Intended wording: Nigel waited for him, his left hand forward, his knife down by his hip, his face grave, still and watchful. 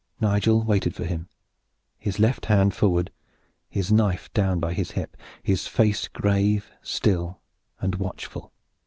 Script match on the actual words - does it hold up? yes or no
yes